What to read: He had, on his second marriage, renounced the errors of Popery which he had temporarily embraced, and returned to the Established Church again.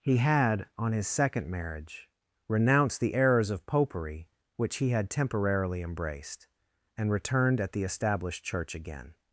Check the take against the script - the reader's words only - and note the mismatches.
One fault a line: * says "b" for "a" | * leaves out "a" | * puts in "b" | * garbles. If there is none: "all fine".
* says "at" for "to"